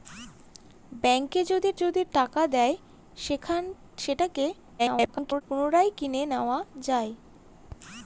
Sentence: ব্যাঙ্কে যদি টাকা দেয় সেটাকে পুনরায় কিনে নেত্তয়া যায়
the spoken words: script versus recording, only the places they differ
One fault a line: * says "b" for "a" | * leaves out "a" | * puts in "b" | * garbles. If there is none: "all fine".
* puts in "যদি"
* garbles